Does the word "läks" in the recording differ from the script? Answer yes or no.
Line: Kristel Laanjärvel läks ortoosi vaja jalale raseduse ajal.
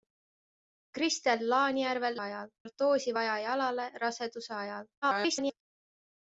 yes